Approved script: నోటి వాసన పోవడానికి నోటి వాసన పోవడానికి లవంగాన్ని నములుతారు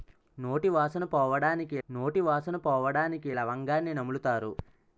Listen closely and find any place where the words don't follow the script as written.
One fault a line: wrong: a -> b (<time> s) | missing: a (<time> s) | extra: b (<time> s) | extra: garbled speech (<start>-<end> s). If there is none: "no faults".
no faults